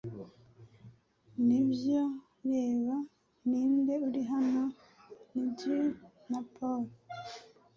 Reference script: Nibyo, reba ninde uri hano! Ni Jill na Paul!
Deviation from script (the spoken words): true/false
false